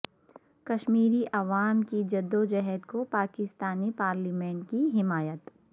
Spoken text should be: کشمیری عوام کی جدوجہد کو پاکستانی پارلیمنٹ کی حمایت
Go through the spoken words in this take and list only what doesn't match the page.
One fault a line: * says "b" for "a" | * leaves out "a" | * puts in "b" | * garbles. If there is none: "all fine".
all fine